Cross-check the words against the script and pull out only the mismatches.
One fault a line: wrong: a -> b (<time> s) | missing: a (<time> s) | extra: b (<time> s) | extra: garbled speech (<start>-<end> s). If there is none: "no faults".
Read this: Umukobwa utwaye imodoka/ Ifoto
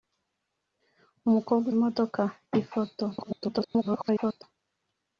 missing: utwaye (1.6 s)
extra: garbled speech (3.1-4.4 s)